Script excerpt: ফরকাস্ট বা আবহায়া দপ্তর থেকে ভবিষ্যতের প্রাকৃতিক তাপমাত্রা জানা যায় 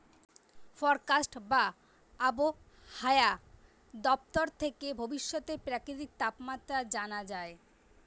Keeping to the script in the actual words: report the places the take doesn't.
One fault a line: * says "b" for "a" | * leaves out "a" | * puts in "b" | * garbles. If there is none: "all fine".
all fine